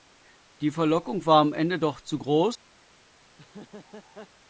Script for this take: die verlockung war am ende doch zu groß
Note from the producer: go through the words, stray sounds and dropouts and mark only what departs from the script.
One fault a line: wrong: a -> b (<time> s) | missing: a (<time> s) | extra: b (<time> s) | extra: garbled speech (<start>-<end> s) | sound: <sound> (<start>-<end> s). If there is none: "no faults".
sound: laugh (3.3-4.3 s)